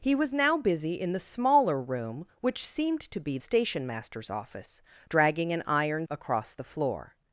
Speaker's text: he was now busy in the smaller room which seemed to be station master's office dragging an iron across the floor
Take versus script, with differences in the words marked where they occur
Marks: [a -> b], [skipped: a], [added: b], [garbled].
he was now busy in the smaller room which seemed to be station master's office dragging an iron across the floor